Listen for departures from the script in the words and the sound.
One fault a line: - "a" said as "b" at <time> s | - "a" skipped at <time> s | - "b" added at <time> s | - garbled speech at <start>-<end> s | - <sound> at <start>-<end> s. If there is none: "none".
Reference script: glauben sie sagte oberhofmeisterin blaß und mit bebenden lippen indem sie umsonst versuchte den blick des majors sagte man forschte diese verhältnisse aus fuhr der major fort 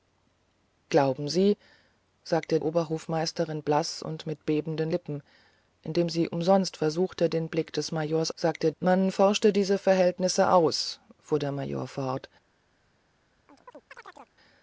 - chirp at 13.5-14.4 s